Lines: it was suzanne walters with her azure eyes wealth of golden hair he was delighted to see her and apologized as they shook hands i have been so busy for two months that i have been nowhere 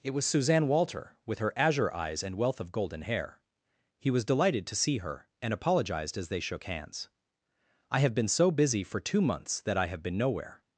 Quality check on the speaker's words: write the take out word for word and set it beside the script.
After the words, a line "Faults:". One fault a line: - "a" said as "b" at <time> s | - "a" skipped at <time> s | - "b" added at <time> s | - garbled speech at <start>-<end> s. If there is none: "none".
it was suzanne walter with her azure eyes and wealth of golden hair he was delighted to see her and apologized as they shook hands i have been so busy for two months that i have been nowhere
Faults:
- "walters" said as "walter" at 0.7 s
- "and" added at 2.2 s